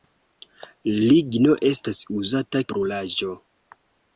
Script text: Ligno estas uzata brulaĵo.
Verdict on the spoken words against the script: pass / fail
pass